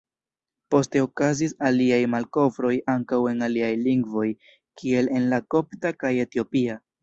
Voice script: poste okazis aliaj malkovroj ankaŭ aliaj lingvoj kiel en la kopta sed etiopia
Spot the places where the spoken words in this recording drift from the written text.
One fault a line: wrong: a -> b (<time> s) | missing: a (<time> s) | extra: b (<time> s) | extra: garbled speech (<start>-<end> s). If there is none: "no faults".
extra: en (3.3 s)
wrong: sed -> kaj (6.0 s)